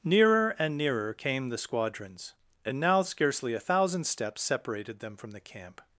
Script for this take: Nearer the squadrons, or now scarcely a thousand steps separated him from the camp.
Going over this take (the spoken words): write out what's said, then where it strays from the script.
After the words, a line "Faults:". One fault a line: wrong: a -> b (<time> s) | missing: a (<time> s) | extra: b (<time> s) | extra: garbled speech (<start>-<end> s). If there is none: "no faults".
Nearer and nearer came the squadrons, and now scarcely a thousand steps separated them from the camp.
Faults:
extra: and nearer came (0.6 s)
wrong: or -> and (2.6 s)
wrong: him -> them (5.0 s)